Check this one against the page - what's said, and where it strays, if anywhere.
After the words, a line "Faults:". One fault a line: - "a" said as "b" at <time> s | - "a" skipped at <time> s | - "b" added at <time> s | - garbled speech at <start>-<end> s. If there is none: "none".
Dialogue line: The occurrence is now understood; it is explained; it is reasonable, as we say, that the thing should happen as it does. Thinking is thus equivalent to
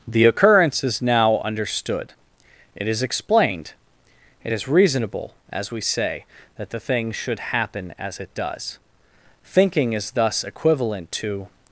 The occurrence is now understood; it is explained; it is reasonable, as we say, that the thing should happen as it does. Thinking is thus equivalent to
Faults:
none